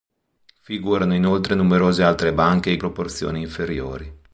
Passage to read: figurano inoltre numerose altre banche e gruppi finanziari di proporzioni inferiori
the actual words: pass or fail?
fail